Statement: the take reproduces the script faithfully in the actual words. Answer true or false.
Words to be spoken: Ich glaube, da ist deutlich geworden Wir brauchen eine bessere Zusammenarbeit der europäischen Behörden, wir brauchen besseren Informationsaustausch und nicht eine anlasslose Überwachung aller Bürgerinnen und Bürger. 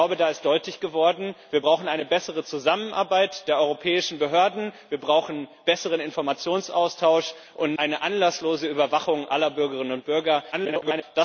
false